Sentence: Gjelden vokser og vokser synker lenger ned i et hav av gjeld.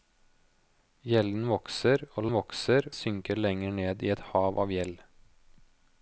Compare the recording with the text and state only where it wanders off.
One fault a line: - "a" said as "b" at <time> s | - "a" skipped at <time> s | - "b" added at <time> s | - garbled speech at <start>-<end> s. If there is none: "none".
none